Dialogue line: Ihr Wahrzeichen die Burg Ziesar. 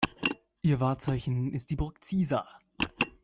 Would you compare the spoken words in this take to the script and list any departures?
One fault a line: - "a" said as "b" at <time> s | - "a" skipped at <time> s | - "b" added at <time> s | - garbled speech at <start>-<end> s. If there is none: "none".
- "ist" added at 1.5 s